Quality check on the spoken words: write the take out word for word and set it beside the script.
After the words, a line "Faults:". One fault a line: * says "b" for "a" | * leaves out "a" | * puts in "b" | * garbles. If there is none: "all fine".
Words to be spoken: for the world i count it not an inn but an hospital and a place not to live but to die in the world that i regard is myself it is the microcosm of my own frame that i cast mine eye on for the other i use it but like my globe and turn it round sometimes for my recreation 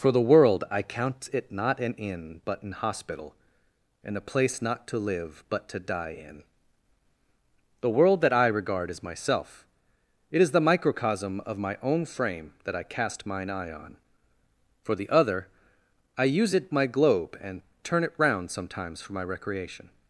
for the world i count it not an inn but an hospital and a place not to live but to die in the world that i regard is myself it is the microcosm of my own frame that i cast mine eye on for the other i use it my globe and turn it round sometimes for my recreation
Faults:
* leaves out "but like"